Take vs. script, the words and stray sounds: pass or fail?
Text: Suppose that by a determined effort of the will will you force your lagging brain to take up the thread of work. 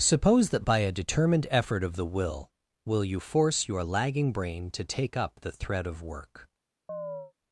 fail